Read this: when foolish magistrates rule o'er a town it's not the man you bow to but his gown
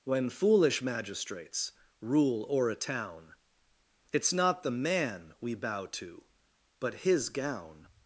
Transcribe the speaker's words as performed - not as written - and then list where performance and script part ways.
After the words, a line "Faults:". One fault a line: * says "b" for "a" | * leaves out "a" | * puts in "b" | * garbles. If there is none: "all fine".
when foolish magistrates rule o'er a town it's not the man we bow to but his gown
Faults:
* says "we" for "you"